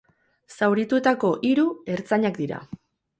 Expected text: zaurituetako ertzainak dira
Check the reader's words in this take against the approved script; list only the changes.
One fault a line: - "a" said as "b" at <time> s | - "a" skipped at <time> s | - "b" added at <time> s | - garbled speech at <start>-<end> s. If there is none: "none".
- "hiru" added at 1.5 s